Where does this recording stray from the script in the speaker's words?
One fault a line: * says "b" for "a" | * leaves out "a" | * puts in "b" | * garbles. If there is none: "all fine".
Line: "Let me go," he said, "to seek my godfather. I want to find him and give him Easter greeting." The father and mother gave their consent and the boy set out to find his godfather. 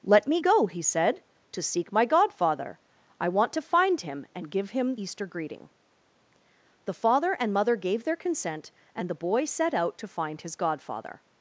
all fine